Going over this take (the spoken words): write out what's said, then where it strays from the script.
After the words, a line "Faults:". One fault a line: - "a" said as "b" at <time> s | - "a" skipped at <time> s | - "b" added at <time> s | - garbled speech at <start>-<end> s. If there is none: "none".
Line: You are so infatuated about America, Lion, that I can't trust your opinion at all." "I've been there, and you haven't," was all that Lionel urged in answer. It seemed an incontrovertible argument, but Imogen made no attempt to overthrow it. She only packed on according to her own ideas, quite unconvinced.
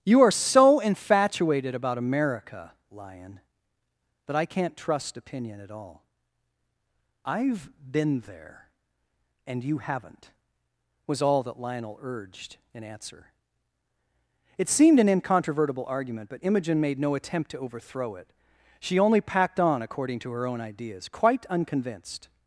You are so infatuated about America, Lion, that I can't trust opinion at all." "I've been there, and you haven't," was all that Lionel urged in answer. It seemed an incontrovertible argument, but Imogen made no attempt to overthrow it. She only packed on according to her own ideas, quite unconvinced.
Faults:
- "your" skipped at 5.2 s